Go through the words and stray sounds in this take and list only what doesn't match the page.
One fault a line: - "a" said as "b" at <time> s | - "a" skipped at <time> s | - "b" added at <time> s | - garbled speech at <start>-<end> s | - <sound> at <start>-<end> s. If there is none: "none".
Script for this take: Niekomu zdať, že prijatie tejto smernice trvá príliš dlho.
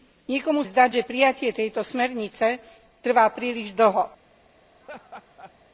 - laugh at 4.8-5.5 s